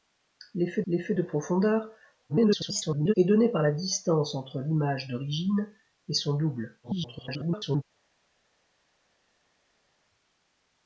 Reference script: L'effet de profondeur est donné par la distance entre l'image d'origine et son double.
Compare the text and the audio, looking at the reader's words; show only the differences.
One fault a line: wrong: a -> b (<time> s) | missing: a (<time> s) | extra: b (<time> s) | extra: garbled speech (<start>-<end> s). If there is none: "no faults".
extra: l'effet (0.9 s)
extra: garbled speech (2.3-3.1 s)
extra: garbled speech (6.8-7.8 s)